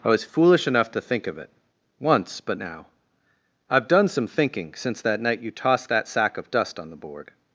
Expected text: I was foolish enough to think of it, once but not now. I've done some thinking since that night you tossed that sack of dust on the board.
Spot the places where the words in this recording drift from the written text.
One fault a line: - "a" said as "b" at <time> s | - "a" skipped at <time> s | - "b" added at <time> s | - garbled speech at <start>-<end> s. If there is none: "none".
- "not" skipped at 2.6 s